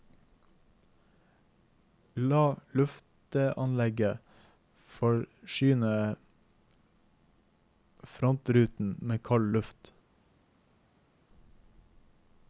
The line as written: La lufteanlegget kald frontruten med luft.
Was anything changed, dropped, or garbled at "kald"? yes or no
yes